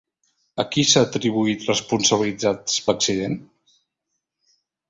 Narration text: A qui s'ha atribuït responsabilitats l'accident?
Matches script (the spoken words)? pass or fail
pass